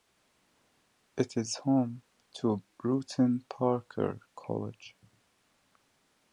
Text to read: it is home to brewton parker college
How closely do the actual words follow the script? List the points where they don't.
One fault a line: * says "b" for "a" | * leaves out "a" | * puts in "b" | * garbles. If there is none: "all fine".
all fine